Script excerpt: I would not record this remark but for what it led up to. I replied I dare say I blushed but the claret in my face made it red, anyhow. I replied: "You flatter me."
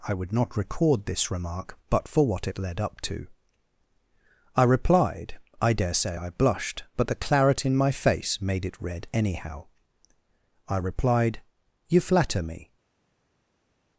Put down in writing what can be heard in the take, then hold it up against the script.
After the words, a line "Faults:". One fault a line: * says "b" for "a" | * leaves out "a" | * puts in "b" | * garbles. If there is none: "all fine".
I would not record this remark but for what it led up to. I replied I dare say I blushed but the claret in my face made it red, anyhow. I replied: "You flatter me."
Faults:
all fine